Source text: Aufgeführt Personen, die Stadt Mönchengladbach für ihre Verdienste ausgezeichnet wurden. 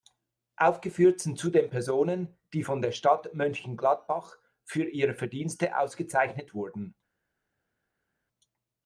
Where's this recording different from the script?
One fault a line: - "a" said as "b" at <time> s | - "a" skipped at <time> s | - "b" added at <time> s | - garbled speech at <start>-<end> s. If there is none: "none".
- "sind zudem" added at 1.2 s
- "von der" added at 2.6 s